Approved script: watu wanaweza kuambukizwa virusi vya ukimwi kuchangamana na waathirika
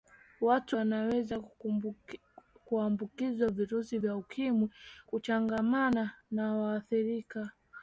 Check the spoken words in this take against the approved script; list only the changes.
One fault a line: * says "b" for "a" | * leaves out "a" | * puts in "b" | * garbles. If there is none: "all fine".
all fine